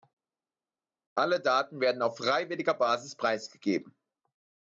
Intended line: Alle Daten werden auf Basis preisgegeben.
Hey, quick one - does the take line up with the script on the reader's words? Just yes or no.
no